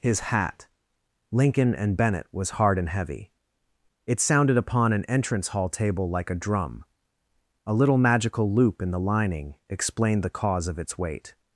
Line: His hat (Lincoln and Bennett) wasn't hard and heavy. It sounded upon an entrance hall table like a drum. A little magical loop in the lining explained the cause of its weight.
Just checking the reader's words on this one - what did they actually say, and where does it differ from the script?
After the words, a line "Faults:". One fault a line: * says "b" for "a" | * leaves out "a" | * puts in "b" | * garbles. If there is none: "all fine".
His hat (Lincoln and Bennett) was hard and heavy. It sounded upon an entrance hall table like a drum. A little magical loop in the lining explained the cause of its weight.
Faults:
* says "was" for "wasn't"